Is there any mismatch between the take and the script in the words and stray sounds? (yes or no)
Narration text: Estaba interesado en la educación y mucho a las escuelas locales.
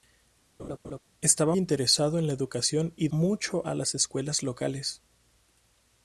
yes